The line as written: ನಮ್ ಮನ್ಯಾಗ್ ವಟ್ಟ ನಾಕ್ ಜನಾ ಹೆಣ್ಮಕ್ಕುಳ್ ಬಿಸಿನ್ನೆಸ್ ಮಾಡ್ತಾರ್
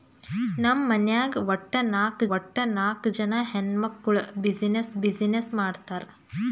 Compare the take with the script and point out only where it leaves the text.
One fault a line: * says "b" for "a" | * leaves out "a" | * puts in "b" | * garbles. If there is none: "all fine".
* puts in "ವಟ್ಟ ನಾಕ್"
* puts in "ಬಿಸಿನ್ನೆಸ್"